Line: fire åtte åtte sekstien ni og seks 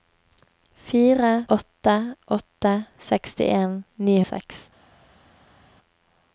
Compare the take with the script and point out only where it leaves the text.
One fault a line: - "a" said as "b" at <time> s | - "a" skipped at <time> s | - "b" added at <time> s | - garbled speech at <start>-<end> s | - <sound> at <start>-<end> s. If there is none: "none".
none